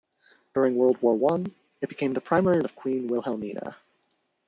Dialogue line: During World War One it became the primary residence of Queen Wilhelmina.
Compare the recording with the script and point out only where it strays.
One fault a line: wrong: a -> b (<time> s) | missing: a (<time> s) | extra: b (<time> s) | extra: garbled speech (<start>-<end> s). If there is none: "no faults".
missing: residence (2.6 s)